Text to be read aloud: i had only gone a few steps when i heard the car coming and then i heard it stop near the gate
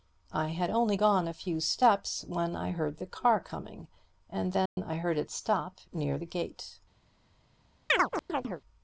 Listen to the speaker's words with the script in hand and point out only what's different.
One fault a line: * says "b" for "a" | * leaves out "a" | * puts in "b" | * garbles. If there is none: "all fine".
all fine